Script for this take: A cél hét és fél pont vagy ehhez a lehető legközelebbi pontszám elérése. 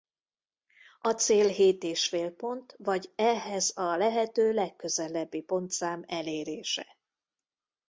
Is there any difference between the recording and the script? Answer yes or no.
no